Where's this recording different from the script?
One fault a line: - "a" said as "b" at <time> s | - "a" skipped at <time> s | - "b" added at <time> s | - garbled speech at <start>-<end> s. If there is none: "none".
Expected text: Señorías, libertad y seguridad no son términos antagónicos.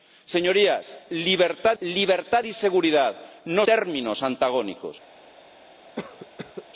- "libertad" added at 1.8 s
- "son" skipped at 3.7 s